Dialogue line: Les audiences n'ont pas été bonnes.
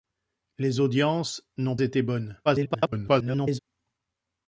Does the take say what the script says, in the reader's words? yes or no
no